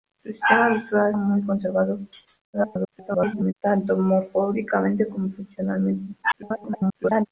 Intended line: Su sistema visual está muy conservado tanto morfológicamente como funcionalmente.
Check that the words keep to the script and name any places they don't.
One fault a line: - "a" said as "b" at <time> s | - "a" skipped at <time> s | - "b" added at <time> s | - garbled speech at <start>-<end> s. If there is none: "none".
- "está" skipped at 1.1 s
- garbled speech at 2.5-3.5 s
- garbled speech at 6.2-7.3 s